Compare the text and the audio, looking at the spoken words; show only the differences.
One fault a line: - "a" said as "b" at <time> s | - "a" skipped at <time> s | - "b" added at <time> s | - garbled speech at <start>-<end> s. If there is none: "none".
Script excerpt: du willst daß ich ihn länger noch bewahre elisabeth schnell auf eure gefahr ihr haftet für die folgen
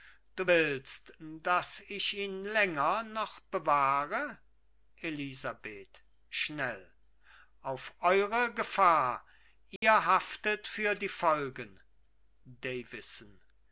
none